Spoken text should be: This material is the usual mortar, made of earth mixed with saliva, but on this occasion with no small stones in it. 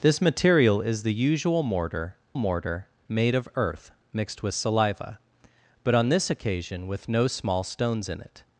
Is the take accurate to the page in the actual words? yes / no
no